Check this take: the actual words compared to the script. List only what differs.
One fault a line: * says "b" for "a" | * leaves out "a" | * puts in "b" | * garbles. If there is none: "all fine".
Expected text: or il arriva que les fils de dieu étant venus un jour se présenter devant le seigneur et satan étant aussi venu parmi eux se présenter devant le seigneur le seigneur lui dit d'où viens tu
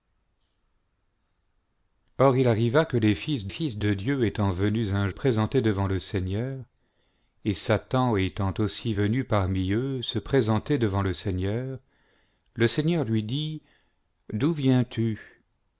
* puts in "fils"
* leaves out "jour se"